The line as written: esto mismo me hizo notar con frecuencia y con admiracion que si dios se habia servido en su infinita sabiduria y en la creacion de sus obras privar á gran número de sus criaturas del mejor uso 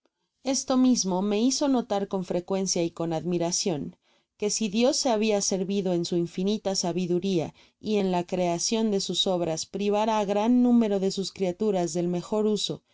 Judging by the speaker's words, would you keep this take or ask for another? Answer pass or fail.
pass